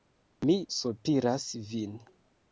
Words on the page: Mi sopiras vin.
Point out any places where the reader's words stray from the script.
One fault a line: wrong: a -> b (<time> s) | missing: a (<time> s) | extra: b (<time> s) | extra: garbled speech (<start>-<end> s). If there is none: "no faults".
no faults